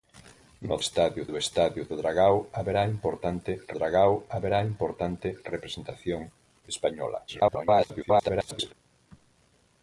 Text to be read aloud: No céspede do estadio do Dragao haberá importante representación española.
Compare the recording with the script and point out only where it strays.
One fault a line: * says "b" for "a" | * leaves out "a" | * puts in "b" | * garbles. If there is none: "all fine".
* says "estadio" for "céspede"
* puts in "Dragao haberá importante"
* garbles